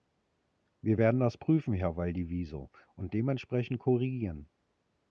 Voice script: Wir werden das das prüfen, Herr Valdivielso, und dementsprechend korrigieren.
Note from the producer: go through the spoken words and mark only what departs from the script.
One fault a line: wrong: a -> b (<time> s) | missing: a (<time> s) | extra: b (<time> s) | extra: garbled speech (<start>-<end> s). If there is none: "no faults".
missing: das (1.4 s)